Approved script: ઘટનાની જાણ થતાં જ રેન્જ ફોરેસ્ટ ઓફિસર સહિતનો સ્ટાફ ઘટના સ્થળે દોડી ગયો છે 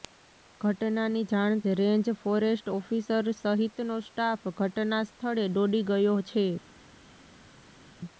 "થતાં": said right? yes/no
no